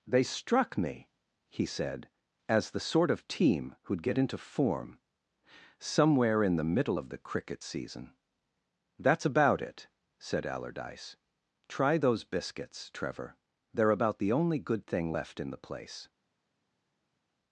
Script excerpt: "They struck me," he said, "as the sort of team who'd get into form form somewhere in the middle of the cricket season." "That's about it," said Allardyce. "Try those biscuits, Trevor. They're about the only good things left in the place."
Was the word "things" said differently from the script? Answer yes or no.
yes